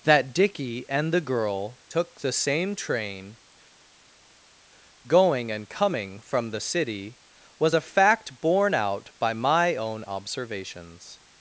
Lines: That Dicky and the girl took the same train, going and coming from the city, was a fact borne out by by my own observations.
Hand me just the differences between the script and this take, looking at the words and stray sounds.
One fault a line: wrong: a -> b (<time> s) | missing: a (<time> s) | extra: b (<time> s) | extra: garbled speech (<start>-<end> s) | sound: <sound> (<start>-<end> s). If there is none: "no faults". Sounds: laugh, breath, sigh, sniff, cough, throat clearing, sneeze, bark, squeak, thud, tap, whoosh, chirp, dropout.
missing: by (9.3 s)